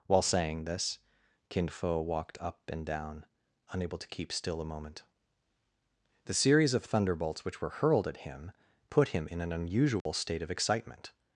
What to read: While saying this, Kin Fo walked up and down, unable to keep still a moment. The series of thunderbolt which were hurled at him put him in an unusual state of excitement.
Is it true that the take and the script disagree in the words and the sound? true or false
true